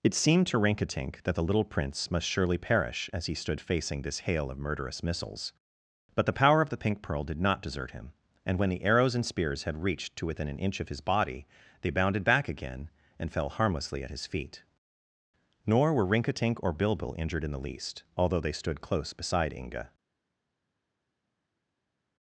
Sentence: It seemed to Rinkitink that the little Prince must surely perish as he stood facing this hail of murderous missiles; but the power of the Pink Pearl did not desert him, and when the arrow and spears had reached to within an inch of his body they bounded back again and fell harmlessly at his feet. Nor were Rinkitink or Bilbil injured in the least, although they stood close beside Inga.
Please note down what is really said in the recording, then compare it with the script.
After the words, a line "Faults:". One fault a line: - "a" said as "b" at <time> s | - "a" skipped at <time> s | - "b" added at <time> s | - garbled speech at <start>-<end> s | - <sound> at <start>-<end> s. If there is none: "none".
It seemed to Rinkitink that the little Prince must surely perish as he stood facing this hail of murderous missiles; but the power of the Pink Pearl did not desert him, and when the arrows and spears had reached to within an inch of his body they bounded back again and fell harmlessly at his feet. Nor were Rinkitink or Bilbil injured in the least, although they stood close beside Inga.
Faults:
- "arrow" said as "arrows" at 8.8 s